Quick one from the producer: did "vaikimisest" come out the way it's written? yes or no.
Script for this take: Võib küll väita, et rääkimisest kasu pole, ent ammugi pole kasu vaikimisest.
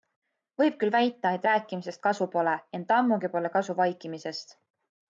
yes